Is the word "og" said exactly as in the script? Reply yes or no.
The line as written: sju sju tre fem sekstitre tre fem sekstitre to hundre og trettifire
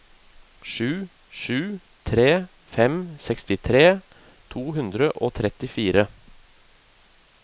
yes